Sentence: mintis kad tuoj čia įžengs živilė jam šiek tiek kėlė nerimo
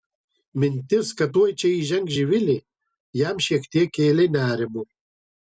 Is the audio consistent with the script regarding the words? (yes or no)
yes